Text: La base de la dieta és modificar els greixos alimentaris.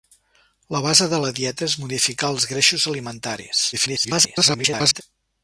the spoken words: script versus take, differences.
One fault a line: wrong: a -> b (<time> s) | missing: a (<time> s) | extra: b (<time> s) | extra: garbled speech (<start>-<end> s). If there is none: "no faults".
extra: garbled speech (3.7-5.0 s)